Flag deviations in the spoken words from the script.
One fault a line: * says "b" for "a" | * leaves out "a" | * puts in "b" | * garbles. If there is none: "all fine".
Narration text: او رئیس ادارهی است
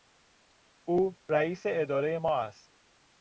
* puts in "ما"